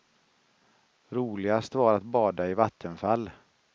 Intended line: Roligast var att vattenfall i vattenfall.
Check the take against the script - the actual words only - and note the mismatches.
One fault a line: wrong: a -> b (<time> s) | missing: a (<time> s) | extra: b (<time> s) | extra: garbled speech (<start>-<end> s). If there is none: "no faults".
wrong: vattenfall -> bada (2.0 s)